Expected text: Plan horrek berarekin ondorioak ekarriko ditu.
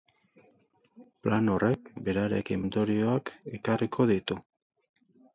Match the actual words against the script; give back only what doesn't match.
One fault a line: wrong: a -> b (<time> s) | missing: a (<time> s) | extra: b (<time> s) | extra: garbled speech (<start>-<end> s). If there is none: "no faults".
no faults